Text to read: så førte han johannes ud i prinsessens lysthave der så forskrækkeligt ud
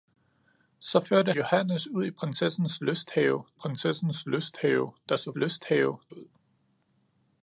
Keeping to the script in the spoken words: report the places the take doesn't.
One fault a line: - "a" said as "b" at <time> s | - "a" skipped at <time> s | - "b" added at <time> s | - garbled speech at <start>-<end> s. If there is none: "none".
- "han" skipped at 1.3 s
- "prinsessens lysthave" added at 3.5 s
- "forskrækkeligt" said as "lysthave" at 5.3 s